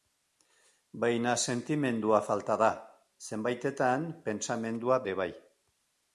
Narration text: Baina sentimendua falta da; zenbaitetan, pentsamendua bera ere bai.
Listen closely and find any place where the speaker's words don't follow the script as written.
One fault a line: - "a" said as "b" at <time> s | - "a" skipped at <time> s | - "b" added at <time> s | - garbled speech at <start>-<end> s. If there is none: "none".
- "bera" skipped at 5.0 s